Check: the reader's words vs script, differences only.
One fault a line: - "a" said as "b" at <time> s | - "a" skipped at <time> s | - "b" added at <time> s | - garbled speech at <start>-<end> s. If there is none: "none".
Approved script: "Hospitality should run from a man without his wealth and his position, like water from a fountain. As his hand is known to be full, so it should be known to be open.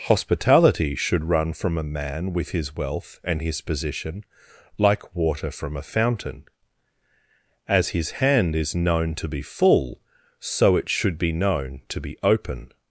- "without" said as "with" at 2.3 s